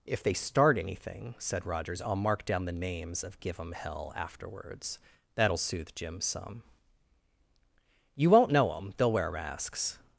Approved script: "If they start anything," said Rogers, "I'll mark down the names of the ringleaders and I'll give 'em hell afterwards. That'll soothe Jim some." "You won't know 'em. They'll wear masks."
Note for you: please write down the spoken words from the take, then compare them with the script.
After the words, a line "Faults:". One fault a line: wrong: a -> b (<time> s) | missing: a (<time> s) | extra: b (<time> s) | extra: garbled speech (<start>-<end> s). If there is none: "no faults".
"If they start anything," said Rogers, "I'll mark down the names of give 'em hell afterwards. That'll soothe Jim some." "You won't know 'em. They'll wear masks."
Faults:
missing: the ringleaders and I'll (3.4 s)